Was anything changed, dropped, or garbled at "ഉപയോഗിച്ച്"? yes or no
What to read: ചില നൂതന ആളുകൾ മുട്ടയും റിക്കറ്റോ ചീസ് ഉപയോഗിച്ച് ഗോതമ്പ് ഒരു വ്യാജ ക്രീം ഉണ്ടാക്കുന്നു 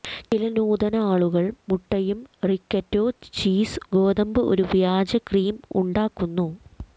yes